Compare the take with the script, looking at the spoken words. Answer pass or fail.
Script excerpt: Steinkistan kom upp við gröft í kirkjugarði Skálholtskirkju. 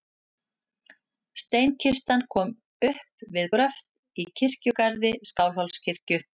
pass